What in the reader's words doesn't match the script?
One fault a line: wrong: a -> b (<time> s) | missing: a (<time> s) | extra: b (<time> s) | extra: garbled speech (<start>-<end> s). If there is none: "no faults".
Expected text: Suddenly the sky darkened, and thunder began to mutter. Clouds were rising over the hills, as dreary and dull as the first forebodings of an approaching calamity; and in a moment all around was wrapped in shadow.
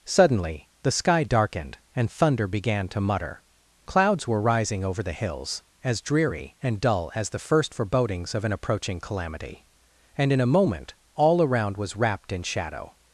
no faults